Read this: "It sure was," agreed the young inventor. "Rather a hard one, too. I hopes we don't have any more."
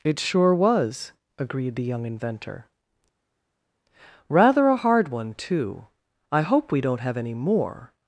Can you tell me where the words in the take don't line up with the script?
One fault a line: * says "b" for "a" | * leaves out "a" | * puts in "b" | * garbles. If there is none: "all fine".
* says "hope" for "hopes"